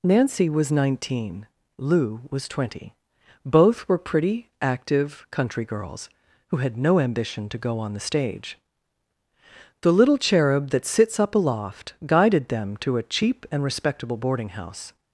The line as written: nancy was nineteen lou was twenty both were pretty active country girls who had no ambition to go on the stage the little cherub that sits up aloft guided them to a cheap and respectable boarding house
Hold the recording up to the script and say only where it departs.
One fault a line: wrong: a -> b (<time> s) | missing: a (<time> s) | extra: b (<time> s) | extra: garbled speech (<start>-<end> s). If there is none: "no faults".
no faults